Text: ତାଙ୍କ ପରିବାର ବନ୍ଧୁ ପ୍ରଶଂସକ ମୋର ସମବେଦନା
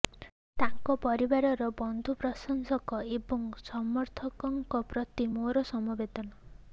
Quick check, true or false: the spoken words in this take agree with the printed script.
false